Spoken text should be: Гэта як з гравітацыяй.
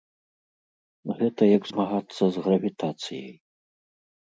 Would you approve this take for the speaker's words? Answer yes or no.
no